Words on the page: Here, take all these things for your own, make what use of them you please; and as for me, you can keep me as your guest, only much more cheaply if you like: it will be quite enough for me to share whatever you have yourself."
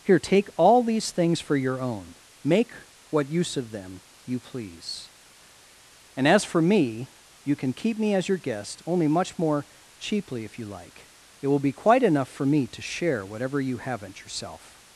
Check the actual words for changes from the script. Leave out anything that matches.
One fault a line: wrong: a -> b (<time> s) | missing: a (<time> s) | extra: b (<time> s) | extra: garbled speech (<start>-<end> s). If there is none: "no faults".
wrong: have -> haven't (13.8 s)